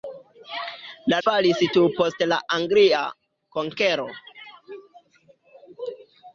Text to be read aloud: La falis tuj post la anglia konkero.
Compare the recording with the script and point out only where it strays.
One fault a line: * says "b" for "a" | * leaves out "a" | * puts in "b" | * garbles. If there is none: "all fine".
all fine